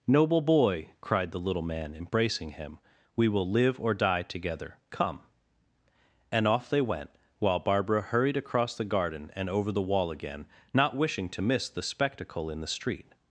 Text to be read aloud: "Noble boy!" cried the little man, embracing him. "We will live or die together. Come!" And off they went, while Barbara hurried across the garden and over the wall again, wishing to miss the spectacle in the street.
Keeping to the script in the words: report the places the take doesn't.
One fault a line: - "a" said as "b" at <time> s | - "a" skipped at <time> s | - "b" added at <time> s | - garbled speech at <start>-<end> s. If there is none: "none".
- "not" added at 10.7 s